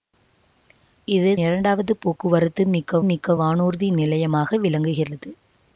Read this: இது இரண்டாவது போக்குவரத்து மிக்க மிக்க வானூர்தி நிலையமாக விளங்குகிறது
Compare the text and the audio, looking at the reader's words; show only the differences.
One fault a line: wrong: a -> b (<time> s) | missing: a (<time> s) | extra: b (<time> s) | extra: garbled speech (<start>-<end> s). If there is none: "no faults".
no faults